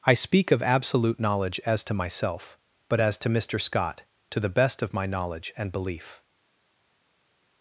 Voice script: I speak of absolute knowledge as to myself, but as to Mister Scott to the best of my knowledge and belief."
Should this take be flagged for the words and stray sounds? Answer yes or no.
no